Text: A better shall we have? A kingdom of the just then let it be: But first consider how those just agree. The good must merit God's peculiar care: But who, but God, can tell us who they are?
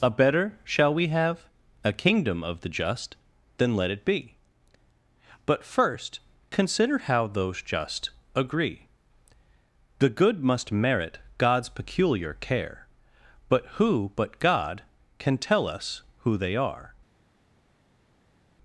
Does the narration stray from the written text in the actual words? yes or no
no